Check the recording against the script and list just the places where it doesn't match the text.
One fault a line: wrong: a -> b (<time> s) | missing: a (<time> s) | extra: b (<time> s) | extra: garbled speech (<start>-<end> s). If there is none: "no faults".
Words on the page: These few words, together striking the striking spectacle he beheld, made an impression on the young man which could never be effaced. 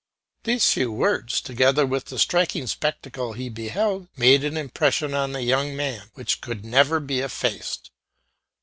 wrong: striking -> with (1.9 s)